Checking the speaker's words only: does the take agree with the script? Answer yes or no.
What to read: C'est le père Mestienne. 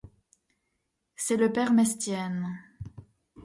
yes